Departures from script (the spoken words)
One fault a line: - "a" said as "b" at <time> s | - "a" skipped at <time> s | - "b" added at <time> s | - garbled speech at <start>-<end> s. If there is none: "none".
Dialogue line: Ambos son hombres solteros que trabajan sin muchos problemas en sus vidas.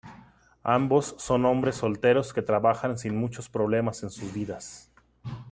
none